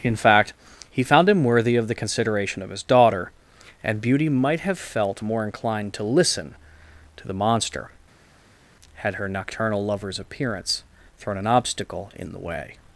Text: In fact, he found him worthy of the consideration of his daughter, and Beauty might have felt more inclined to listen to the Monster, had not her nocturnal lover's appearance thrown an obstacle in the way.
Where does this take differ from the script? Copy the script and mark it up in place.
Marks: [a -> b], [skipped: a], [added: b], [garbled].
In fact, he found him worthy of the consideration of his daughter, and Beauty might have felt more inclined to listen to the Monster, had [skipped: not] her nocturnal lover's appearance thrown an obstacle in the way.